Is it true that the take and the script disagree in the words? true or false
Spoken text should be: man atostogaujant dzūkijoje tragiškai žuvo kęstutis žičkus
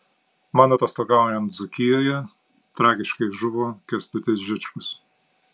false